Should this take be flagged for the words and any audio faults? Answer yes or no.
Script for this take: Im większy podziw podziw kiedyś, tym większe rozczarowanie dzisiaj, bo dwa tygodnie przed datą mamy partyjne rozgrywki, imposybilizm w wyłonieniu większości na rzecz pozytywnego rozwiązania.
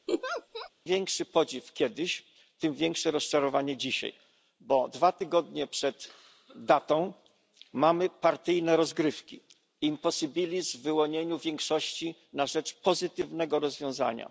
yes